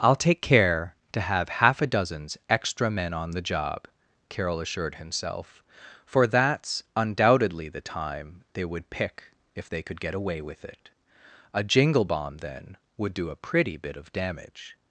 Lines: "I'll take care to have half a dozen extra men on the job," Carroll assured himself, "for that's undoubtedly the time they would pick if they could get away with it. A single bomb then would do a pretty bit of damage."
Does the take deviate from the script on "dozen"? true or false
true